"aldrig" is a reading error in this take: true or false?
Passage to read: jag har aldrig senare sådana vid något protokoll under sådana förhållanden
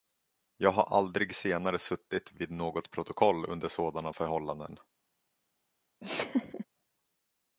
false